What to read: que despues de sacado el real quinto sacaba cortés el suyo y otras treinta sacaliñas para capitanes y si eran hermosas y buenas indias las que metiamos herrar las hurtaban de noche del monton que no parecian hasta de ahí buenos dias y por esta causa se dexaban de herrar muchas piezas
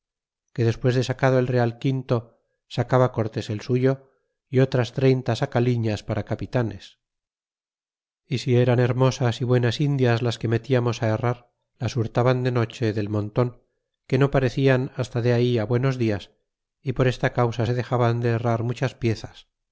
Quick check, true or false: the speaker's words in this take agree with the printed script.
true